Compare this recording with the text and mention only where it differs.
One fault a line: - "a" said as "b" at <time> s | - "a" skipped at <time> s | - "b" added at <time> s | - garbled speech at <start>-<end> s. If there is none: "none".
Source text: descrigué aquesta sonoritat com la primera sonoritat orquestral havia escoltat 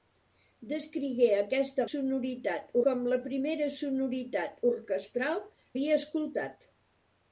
none